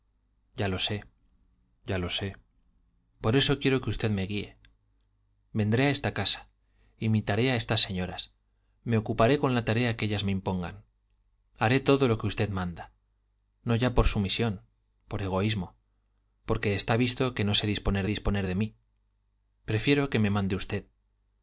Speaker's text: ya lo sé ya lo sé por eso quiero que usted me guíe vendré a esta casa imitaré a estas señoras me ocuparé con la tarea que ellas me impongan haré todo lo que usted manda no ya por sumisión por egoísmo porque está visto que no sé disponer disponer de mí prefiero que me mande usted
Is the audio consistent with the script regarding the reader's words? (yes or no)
yes